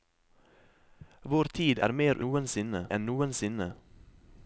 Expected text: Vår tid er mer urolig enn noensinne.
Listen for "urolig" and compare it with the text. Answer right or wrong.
wrong